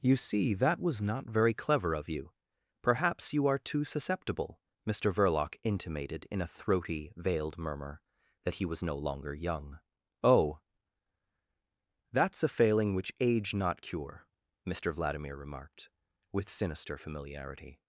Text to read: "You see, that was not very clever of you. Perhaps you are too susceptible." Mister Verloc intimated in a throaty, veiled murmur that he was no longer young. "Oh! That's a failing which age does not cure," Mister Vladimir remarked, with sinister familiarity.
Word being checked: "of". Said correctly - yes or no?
yes